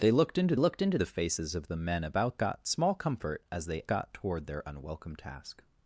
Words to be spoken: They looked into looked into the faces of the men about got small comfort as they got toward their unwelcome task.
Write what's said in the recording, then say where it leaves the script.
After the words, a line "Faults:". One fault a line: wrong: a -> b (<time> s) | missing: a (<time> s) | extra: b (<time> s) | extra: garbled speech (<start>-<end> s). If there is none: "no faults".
They looked into looked into the faces of the men about got small comfort as they got toward their unwelcome task.
Faults:
no faults